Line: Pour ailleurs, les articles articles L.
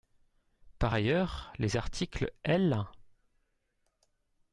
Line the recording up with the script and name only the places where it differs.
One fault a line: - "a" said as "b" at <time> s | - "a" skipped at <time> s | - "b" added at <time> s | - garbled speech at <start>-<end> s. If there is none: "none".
- "Pour" said as "Par" at 0.8 s
- "articles" skipped at 2.3 s